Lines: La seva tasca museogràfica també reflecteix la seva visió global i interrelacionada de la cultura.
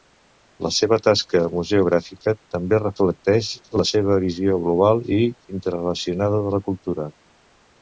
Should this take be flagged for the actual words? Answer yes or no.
no